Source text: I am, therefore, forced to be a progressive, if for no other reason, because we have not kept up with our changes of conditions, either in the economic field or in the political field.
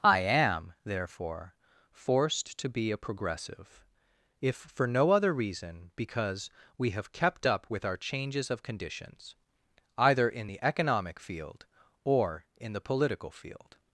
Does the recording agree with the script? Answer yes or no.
no